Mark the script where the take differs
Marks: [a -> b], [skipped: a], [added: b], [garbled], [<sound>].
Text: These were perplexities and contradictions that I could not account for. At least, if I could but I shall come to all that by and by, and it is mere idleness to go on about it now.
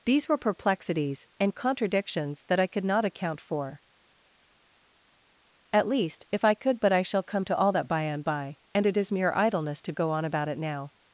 These were perplexities and contradictions that I could not account for. At least, if I could but I shall come to all that by and by, and it is mere idleness to go on about it now.